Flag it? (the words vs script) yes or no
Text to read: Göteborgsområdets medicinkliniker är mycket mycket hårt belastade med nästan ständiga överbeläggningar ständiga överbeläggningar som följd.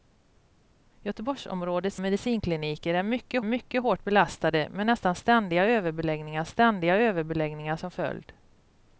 no